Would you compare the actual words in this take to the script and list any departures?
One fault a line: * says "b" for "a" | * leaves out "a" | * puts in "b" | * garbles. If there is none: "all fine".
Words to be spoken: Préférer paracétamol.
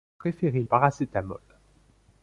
all fine